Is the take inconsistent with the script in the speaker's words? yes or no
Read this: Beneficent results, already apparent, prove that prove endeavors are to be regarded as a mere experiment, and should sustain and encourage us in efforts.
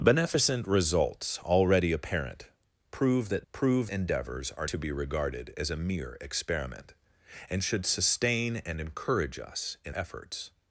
no